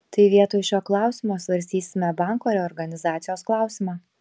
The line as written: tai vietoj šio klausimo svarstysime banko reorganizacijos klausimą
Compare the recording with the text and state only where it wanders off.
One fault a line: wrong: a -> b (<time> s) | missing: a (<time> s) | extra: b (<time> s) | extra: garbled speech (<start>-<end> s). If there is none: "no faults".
no faults